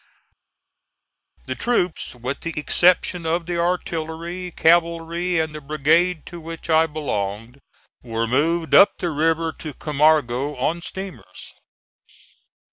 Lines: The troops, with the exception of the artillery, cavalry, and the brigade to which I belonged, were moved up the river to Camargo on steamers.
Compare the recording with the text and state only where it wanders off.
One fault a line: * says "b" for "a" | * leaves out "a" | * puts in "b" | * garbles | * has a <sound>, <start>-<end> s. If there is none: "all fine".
all fine